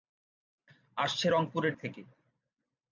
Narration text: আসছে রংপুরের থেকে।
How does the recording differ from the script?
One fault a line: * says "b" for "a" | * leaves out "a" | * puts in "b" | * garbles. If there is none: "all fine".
all fine